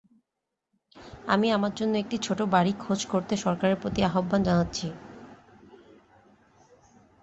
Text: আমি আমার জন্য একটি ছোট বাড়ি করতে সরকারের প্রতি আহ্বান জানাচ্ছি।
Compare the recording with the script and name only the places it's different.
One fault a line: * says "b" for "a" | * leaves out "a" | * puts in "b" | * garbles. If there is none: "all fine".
* puts in "খোঁজ"